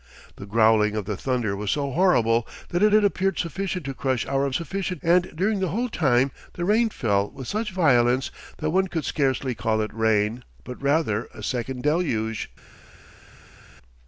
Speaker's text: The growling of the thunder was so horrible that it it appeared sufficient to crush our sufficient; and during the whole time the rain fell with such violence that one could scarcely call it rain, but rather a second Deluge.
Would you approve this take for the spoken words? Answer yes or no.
yes